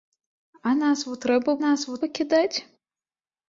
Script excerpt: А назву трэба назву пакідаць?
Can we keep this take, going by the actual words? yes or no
yes